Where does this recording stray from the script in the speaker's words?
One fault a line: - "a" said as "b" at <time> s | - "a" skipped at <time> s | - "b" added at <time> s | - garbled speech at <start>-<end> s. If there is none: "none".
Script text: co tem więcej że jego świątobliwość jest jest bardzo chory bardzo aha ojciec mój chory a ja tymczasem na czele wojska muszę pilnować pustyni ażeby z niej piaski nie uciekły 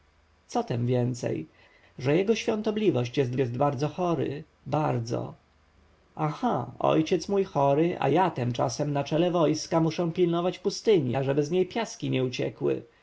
none